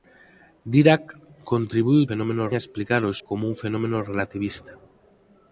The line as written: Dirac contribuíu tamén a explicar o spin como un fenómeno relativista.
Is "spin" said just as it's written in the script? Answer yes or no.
no